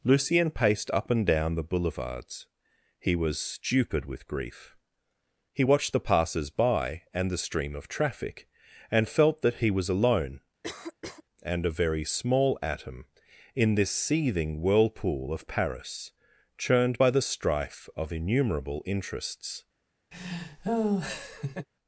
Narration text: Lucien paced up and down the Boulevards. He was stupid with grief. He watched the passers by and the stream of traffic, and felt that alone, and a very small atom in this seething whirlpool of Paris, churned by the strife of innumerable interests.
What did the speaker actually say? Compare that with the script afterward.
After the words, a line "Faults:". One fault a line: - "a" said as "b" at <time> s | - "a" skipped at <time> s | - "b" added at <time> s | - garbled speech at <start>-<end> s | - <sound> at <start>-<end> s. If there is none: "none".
Lucien paced up and down the Boulevards. He was stupid with grief. He watched the passers by and the stream of traffic, and felt that he was alone, and a very small atom in this seething whirlpool of Paris, churned by the strife of innumerable interests.
Faults:
- "he was" added at 9.6 s
- cough at 10.6-11.2 s
- laugh at 20.1-21.7 s